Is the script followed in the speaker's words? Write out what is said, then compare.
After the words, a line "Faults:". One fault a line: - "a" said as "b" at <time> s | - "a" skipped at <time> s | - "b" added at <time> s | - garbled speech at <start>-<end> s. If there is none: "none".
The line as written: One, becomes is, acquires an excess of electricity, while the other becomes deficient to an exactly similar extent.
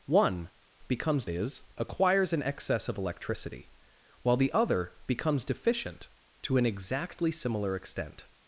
One, becomes is, acquires an excess of electricity, while the other becomes deficient to an exactly similar extent.
Faults:
none